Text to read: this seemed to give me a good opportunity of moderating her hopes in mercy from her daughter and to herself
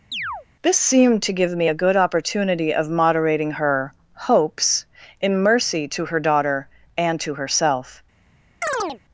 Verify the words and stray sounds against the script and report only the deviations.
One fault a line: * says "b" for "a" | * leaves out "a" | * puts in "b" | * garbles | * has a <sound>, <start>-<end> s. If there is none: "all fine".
* has a chirp, 0.1-0.5 s
* says "to" for "from"
* has a chirp, 8.6-9.0 s